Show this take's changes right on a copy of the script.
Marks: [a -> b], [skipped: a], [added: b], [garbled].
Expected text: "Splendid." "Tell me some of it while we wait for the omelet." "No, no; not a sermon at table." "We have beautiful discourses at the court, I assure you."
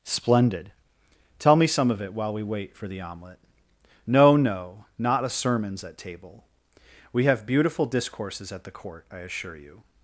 "Splendid." "Tell me some of it while we wait for the omelet." "No, no; not a [sermon -> sermons] at table." "We have beautiful discourses at the court, I assure you."